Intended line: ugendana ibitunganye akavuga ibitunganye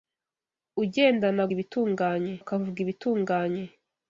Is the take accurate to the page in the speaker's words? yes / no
yes